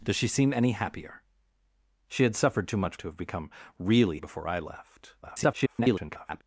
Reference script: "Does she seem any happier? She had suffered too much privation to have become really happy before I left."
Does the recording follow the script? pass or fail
fail